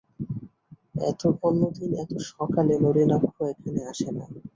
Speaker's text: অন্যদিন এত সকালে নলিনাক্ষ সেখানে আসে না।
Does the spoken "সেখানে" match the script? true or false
false